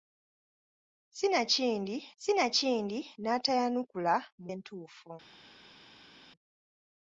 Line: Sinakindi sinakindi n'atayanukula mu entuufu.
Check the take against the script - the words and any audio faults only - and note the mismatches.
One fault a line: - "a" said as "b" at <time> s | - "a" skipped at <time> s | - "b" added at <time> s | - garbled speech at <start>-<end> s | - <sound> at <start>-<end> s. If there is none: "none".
none